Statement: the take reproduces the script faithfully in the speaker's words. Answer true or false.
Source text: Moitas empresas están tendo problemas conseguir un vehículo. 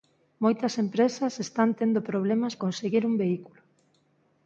true